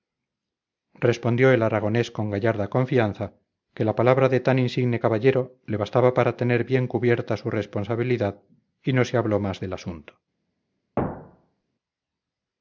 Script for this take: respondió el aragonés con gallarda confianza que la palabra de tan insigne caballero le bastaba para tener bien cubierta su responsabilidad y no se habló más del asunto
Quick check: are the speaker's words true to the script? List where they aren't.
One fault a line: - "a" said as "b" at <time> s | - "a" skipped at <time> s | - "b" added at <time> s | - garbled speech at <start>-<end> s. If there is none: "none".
none